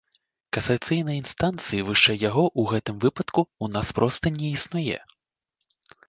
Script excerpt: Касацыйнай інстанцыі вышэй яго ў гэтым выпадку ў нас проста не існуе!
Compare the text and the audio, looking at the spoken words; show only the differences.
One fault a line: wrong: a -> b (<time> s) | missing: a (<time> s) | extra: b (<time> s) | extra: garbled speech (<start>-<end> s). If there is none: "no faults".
no faults